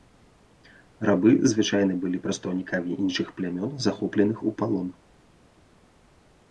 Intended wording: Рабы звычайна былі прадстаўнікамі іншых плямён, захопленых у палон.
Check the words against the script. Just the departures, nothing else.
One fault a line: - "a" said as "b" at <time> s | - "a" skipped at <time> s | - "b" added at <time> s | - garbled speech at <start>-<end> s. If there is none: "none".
none